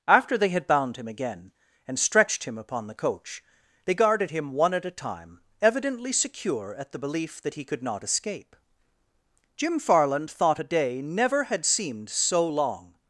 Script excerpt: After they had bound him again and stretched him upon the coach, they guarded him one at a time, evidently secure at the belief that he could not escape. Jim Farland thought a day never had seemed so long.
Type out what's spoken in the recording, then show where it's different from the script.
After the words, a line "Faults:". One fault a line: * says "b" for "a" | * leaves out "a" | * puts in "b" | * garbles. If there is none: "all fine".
After they had bound him again and stretched him upon the coach, they guarded him one at a time, evidently secure at the belief that he could not escape. Jim Farland thought a day never had seemed so long.
Faults:
all fine